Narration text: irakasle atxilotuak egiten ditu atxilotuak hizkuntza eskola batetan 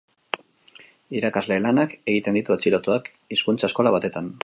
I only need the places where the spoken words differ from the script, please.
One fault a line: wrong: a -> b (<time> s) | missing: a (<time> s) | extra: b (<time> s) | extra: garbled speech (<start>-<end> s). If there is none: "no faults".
wrong: atxilotuak -> lanak (1.7 s)